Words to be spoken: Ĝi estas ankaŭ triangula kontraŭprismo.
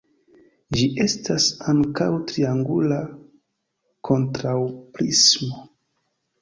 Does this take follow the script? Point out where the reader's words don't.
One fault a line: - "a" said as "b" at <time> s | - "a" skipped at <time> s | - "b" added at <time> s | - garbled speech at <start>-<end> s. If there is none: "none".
none